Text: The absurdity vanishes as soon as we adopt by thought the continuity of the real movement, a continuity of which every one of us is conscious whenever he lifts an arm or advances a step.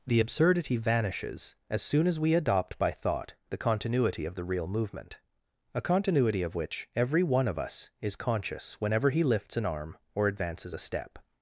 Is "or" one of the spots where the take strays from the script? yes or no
no